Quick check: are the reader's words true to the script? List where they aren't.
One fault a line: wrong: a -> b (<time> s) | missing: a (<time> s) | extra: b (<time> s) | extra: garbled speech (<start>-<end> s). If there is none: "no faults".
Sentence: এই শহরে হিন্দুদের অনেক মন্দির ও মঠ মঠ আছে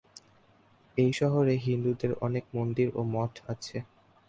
missing: মঠ (3.3 s)